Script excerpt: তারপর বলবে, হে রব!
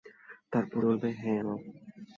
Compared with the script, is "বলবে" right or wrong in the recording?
right